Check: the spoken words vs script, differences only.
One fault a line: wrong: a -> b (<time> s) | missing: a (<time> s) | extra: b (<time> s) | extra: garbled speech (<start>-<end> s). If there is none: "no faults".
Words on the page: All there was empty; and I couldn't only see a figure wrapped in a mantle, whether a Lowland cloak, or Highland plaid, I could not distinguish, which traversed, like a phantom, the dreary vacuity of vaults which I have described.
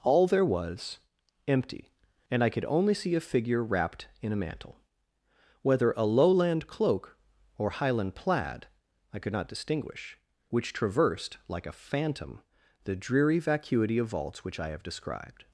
wrong: couldn't -> could (2.5 s)